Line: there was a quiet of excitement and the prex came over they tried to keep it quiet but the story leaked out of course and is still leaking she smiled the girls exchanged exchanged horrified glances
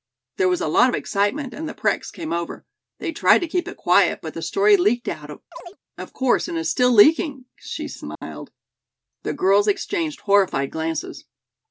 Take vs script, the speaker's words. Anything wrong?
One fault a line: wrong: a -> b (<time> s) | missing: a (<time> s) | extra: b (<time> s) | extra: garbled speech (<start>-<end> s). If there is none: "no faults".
wrong: quiet -> lot (0.7 s)
missing: exchanged (10.2 s)